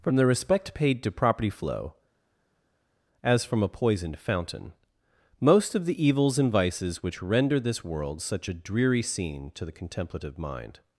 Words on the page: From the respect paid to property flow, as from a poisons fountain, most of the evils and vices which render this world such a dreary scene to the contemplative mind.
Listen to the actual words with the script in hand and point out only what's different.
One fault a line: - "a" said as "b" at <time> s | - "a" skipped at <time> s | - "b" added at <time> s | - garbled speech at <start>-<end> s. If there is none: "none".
- "poisons" said as "poisoned" at 3.7 s